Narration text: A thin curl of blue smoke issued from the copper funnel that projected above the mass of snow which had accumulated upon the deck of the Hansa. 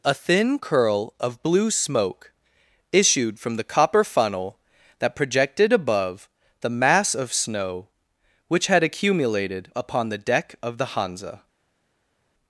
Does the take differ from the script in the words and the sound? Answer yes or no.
no